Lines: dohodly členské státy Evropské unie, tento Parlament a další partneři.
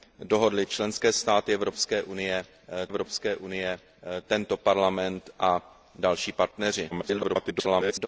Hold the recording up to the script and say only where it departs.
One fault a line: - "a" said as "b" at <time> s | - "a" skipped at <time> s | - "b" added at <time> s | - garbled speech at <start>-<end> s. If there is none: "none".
- "Evropské unie" added at 2.9 s
- garbled speech at 6.9-8.1 s